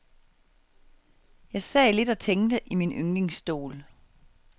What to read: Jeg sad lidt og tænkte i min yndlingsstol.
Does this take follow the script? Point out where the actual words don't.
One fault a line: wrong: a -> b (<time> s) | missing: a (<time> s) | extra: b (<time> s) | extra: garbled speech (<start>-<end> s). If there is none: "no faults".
no faults